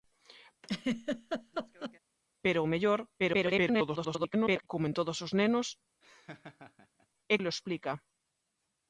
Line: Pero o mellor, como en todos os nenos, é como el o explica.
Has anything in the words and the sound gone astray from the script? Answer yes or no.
yes